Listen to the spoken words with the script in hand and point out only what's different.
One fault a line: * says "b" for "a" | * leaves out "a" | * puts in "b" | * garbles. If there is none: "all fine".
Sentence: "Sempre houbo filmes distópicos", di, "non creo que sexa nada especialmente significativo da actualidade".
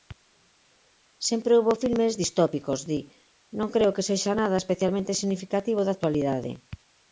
all fine